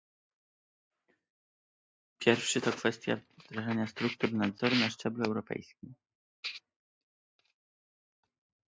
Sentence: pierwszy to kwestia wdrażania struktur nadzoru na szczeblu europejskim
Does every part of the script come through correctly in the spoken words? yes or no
yes